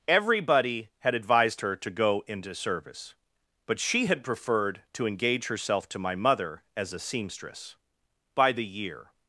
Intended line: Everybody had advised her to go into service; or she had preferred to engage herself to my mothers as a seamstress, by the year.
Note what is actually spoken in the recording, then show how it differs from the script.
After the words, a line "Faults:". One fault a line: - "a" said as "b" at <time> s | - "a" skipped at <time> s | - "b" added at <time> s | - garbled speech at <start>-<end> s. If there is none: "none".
Everybody had advised her to go into service; but she had preferred to engage herself to my mother as a seamstress, by the year.
Faults:
- "or" said as "but" at 3.6 s
- "mothers" said as "mother" at 6.2 s